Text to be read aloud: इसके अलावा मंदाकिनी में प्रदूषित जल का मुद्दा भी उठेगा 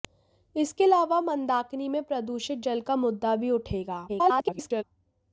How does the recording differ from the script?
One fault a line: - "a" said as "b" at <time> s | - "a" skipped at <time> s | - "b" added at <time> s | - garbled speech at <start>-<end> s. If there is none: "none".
- garbled speech at 4.1-4.8 s